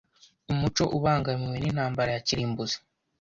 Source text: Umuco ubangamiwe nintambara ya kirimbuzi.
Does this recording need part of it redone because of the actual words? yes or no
no